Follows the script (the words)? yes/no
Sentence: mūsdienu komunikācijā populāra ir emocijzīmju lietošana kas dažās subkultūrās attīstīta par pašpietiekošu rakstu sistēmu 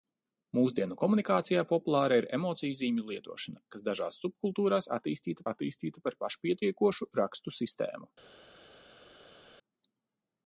no